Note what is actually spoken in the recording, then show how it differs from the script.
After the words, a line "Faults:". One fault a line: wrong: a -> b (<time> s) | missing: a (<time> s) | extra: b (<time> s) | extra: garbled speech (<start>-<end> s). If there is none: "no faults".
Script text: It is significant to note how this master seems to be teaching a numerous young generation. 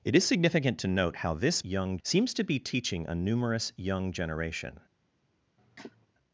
It is significant to note how this young seems to be teaching a numerous young generation.
Faults:
wrong: master -> young (1.6 s)